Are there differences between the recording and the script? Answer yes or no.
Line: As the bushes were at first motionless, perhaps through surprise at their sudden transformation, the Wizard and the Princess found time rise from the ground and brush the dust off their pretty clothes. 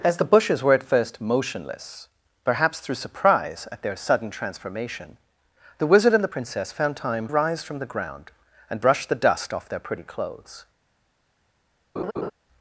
no